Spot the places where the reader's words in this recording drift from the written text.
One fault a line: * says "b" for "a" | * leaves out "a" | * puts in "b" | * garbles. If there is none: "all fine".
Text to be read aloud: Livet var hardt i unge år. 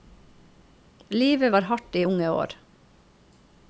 all fine